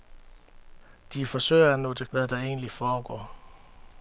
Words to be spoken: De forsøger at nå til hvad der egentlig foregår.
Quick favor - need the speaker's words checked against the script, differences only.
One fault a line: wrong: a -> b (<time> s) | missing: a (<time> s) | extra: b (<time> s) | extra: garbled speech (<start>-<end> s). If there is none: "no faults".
no faults